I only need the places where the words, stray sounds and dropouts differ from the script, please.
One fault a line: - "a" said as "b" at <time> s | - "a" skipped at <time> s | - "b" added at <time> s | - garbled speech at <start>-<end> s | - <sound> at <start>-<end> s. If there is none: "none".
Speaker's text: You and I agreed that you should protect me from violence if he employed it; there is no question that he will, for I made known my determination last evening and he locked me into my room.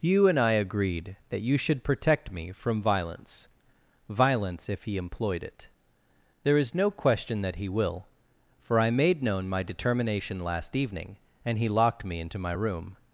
- "violence" added at 4.1 s